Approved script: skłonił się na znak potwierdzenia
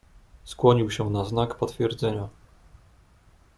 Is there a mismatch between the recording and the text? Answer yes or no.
no